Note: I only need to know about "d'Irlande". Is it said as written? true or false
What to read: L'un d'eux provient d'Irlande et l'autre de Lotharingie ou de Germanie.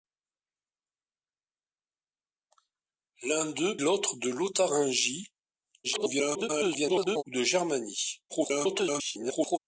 false